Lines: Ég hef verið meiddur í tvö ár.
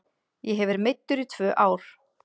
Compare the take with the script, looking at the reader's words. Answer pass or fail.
pass